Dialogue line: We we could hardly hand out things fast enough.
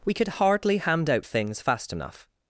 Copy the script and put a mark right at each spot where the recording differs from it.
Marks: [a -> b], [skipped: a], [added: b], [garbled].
We [skipped: we] could hardly hand out things fast enough.